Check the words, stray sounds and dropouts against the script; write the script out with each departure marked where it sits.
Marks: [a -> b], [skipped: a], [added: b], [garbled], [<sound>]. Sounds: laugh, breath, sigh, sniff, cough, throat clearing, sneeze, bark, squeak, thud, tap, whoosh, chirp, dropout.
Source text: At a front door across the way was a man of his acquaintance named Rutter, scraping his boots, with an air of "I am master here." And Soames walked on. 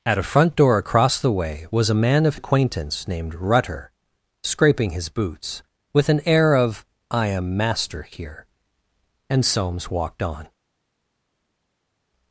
At a front door across the way was a man of [skipped: his] acquaintance named Rutter, scraping his boots, with an air of "I am master here." And Soames walked on.